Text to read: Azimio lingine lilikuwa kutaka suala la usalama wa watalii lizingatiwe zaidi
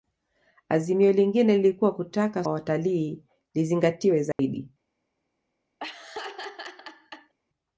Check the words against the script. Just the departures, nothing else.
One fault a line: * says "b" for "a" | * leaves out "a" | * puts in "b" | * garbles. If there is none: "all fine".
* leaves out "suala la usalama"